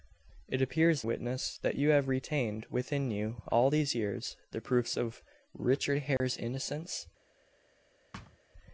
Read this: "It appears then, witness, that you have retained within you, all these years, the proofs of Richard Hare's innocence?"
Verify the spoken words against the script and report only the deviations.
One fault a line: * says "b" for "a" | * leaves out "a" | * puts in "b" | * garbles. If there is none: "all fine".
* leaves out "then"